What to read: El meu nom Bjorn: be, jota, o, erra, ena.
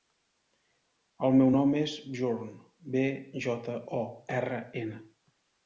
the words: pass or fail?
fail